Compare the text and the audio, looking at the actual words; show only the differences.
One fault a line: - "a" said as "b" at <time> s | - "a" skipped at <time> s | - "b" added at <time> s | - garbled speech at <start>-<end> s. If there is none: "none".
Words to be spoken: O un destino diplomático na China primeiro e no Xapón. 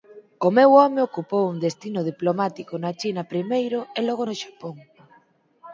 - "meu home ocupou" added at 0.6 s
- "logo" added at 4.1 s